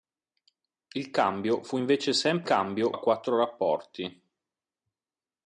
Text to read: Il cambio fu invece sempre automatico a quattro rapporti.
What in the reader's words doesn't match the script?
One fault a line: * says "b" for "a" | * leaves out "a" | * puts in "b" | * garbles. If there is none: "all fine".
* says "cambio" for "automatico"